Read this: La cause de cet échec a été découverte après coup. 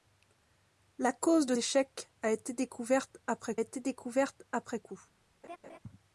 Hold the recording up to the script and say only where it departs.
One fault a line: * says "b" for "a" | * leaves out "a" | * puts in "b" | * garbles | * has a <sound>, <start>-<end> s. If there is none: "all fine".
* leaves out "cet"
* puts in "été découverte après"
* has a laugh, 5.4-5.8 s